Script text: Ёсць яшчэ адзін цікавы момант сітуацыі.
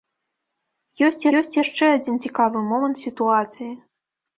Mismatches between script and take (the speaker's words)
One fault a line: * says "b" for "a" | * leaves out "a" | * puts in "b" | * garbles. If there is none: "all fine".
* puts in "ёсць"